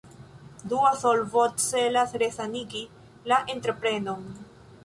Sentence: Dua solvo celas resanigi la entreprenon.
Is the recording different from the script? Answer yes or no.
no